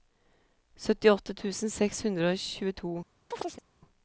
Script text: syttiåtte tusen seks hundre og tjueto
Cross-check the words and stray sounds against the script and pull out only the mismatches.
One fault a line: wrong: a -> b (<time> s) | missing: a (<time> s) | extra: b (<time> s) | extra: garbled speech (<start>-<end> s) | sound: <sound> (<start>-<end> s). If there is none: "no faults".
sound: chirp (3.3-3.6 s)